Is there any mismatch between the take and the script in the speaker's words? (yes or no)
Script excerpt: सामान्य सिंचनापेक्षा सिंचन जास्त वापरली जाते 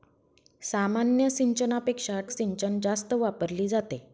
no